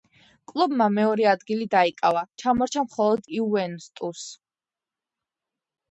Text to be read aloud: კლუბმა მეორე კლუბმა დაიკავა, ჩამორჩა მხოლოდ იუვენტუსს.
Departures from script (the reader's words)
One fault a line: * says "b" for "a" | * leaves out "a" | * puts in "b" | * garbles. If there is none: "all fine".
* says "ადგილი" for "კლუბმა"